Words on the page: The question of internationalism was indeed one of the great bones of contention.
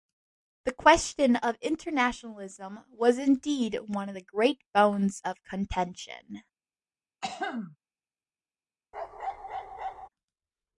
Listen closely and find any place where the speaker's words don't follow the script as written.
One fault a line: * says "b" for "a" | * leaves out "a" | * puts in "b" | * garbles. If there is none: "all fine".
all fine